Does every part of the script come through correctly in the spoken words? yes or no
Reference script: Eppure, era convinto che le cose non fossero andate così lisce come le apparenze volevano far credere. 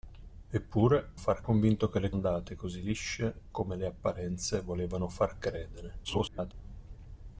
no